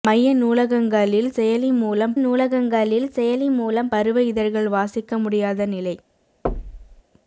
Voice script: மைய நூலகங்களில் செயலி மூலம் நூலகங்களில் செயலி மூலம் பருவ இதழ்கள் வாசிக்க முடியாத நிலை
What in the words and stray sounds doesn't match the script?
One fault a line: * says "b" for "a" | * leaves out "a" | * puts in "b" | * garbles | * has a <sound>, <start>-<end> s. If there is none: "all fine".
* has a thud, 6.4-7.0 s